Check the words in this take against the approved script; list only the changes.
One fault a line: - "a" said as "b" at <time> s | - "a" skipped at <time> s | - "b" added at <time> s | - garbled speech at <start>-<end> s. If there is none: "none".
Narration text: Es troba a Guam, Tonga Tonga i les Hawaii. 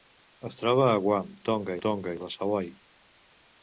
none